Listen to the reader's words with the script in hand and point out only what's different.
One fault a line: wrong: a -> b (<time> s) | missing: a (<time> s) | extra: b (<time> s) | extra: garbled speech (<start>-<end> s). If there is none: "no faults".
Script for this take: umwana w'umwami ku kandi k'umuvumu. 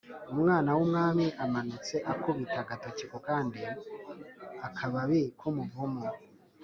extra: amanutse akubita agatoki (1.4 s)
extra: akababi (4.7 s)